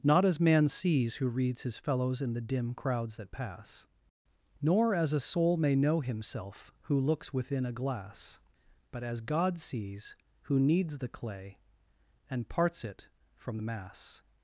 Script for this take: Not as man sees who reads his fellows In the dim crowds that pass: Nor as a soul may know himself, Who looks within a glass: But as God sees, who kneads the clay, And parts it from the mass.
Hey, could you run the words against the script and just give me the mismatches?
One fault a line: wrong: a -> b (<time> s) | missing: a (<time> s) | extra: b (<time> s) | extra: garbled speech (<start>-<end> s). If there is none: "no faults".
no faults